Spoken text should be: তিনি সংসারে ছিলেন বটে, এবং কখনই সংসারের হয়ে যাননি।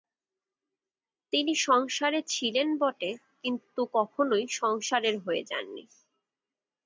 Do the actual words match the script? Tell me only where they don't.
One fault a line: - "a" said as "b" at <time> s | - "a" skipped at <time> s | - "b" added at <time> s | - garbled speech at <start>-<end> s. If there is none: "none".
- "এবং" said as "কিন্তু" at 3.4 s